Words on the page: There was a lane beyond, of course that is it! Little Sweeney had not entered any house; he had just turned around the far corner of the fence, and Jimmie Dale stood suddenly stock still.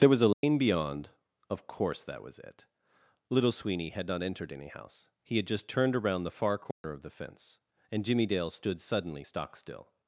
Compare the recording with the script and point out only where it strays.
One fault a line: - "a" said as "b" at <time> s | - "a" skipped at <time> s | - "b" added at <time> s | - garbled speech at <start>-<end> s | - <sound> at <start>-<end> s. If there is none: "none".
- dropout at 0.3-0.4 s
- "is" said as "was" at 2.2 s
- dropout at 6.7-6.8 s